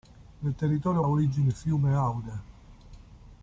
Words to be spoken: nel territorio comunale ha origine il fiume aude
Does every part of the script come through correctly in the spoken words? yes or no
no